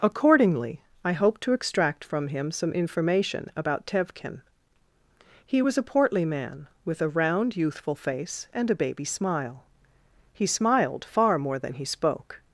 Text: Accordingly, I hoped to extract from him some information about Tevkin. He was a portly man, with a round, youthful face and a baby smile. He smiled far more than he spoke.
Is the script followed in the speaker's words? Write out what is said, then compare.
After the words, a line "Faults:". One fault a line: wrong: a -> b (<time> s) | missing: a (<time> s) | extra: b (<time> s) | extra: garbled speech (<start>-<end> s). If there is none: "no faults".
Accordingly, I hoped to extract from him some information about Tevkin. He was a portly man, with a round, youthful face and a baby smile. He smiled far more than he spoke.
Faults:
no faults